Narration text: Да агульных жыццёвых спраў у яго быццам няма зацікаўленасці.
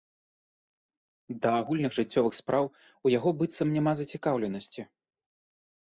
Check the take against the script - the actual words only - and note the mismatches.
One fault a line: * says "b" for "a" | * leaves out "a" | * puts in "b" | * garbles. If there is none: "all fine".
all fine